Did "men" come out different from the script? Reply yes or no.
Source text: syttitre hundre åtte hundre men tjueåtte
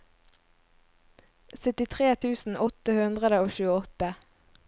yes